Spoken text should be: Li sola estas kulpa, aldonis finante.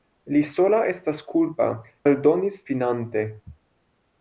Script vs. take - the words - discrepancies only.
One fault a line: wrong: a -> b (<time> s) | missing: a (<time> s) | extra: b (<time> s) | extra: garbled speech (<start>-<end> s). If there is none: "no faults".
no faults